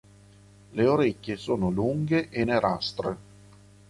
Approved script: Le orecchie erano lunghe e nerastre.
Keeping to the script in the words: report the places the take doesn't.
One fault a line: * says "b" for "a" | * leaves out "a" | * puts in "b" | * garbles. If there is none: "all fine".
* says "sono" for "erano"